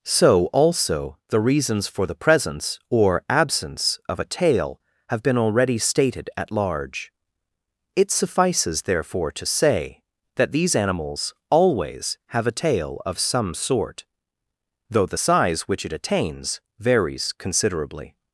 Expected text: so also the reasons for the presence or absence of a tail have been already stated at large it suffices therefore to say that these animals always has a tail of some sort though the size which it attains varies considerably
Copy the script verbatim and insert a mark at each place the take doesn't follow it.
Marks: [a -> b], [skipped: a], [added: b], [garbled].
so also the reasons for the presence or absence of a tail have been already stated at large it suffices therefore to say that these animals always [has -> have] a tail of some sort though the size which it attains varies considerably